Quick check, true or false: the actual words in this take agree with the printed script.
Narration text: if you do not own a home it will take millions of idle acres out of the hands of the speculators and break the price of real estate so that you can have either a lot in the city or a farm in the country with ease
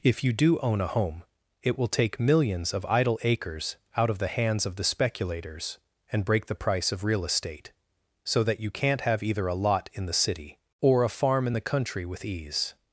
false